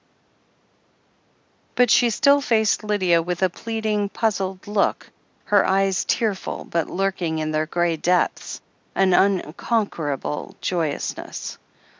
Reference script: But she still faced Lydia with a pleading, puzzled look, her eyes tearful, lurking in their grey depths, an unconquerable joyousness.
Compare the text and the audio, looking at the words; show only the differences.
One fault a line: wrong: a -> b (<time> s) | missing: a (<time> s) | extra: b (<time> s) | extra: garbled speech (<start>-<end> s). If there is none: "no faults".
extra: but (6.7 s)